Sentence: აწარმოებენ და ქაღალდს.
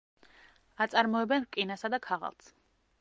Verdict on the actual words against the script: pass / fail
fail